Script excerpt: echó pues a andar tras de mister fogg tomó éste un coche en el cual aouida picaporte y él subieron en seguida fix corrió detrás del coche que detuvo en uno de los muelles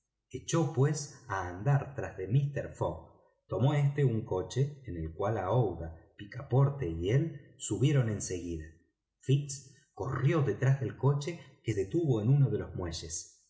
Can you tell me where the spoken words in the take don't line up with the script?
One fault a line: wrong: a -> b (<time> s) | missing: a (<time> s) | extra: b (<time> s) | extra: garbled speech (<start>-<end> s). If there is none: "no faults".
no faults